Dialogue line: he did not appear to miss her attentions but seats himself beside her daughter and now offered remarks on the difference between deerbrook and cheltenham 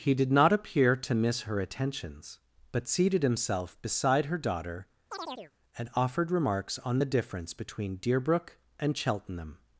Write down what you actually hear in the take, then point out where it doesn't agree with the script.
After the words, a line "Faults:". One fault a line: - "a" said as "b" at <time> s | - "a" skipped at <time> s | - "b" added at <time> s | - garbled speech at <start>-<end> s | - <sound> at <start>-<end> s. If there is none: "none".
he did not appear to miss her attentions but seated himself beside her daughter and offered remarks on the difference between deerbrook and cheltenham
Faults:
- "seats" said as "seated" at 2.9 s
- chirp at 5.1-5.5 s
- "now" skipped at 5.9 s